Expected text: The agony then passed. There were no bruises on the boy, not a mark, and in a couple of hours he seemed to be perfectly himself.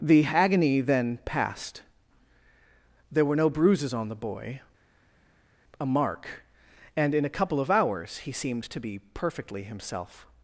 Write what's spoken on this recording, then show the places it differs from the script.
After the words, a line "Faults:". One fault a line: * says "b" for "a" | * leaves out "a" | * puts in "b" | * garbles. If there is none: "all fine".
The agony then passed. There were no bruises on the boy, a mark, and in a couple of hours he seemed to be perfectly himself.
Faults:
* leaves out "not"